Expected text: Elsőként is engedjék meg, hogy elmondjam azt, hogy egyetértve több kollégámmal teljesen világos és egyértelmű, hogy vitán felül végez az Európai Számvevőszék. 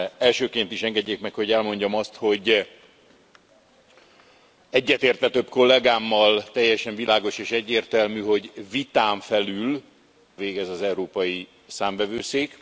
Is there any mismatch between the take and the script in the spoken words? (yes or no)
no